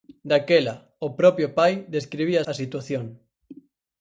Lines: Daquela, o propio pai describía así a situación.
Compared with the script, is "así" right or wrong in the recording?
wrong